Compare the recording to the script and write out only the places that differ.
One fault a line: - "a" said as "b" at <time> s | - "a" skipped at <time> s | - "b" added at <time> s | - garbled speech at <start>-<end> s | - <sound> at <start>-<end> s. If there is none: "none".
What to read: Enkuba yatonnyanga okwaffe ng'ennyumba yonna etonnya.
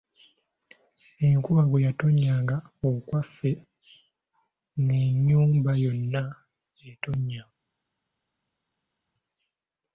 - "bwe" added at 1.7 s